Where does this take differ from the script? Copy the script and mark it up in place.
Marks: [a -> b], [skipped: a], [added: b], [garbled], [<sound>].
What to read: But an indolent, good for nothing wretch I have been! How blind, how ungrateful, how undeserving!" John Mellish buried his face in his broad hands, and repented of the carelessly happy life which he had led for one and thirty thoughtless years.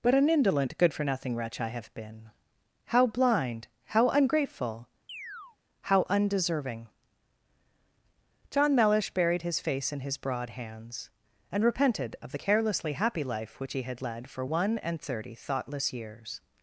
But an indolent, good for nothing wretch I have been! How blind, how ungrateful, [chirp] how undeserving!" John Mellish buried his face in his broad hands, and repented of the carelessly happy life which he had led for one and thirty thoughtless years.